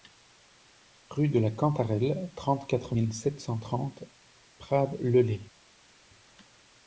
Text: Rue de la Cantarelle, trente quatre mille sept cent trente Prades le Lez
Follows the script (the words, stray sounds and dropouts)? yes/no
yes